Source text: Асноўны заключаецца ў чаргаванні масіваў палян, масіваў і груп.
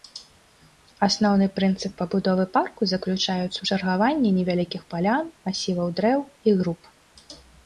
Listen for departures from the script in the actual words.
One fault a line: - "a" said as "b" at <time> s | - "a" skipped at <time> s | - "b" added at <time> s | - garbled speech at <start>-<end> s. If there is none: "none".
- "прынцып пабудовы парку" added at 1.6 s
- "масіваў" said as "невялікіх" at 4.4 s
- "дрэў" added at 6.0 s